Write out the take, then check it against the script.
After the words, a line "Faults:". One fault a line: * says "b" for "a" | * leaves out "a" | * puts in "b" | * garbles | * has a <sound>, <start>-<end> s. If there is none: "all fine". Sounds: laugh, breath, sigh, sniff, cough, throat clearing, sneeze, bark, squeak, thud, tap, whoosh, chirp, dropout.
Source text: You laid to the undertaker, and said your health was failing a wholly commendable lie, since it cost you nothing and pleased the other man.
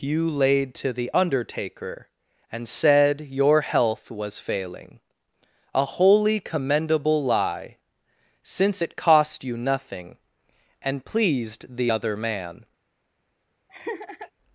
You laid to the undertaker, and said your health was failing a wholly commendable lie, since it cost you nothing and pleased the other man.
Faults:
* has a laugh, 13.7-14.3 s